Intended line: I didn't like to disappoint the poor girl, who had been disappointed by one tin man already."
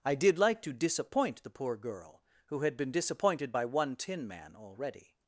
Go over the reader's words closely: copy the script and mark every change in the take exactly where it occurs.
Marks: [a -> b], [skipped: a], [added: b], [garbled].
I [didn't -> did] like to disappoint the poor girl, who had been disappointed by one tin man already."